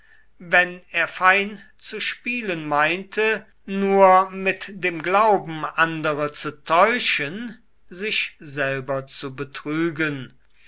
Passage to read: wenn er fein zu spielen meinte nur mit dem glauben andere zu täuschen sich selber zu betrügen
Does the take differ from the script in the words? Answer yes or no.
no